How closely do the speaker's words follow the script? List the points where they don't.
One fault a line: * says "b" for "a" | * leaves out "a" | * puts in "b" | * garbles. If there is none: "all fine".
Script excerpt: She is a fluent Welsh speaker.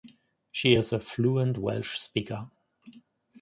all fine